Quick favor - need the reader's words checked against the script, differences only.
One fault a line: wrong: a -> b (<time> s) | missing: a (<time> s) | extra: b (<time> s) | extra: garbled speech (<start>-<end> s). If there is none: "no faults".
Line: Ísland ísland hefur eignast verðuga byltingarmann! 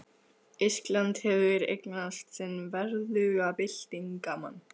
missing: ísland (1.2 s)
extra: sinn (2.4 s)